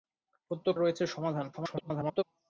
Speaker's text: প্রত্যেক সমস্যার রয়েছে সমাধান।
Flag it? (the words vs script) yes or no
yes